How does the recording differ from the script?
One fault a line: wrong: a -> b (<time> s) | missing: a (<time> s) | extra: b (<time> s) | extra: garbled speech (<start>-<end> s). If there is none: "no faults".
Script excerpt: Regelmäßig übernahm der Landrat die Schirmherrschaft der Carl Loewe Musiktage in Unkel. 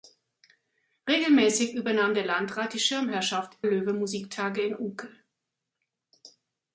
missing: der Carl (3.5 s)